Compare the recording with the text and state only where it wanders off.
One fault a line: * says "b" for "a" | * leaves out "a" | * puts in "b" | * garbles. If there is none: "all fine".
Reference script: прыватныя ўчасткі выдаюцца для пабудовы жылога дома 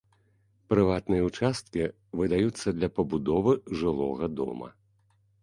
all fine